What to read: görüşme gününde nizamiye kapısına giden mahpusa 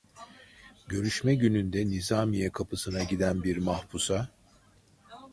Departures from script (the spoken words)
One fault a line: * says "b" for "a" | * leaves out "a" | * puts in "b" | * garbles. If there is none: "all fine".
* puts in "bir"